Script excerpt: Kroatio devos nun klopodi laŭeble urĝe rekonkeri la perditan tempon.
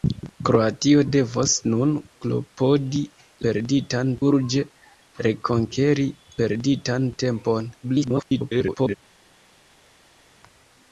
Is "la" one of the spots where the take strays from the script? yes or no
yes